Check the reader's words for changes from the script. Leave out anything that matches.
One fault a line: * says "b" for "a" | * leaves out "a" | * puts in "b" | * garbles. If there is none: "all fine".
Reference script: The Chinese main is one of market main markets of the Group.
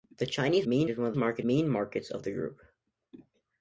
all fine